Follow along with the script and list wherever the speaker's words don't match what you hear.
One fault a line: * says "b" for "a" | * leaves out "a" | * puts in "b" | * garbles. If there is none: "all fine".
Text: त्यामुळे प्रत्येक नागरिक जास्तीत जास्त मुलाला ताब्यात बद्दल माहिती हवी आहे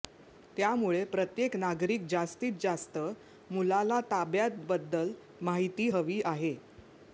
all fine